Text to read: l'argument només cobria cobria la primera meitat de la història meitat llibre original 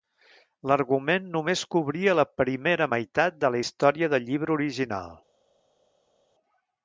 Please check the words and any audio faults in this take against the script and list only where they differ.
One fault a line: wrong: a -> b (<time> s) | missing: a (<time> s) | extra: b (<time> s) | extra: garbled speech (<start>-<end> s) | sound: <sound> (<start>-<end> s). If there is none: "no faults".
missing: cobria (2.2 s)
wrong: meitat -> del (4.2 s)